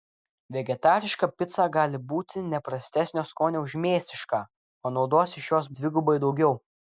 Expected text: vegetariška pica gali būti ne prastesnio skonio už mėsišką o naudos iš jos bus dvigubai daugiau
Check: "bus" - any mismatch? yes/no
yes